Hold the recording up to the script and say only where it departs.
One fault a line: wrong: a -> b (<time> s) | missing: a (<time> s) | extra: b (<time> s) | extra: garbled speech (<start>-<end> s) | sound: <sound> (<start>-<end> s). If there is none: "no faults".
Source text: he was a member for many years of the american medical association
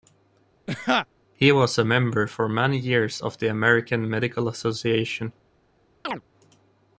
sound: laugh (0.7-1.1 s)
sound: chirp (6.0-6.2 s)